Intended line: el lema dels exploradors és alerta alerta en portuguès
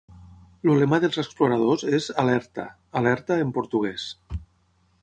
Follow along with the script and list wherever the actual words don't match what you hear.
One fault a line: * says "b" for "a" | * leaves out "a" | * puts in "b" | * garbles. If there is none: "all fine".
all fine